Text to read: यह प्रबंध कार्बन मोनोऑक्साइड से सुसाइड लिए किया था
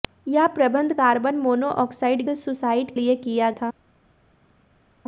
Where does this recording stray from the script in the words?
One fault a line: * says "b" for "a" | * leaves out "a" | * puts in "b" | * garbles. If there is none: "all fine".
all fine